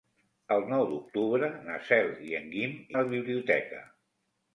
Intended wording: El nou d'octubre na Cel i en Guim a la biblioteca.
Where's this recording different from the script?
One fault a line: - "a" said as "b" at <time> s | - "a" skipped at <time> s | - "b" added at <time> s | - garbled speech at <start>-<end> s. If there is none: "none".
none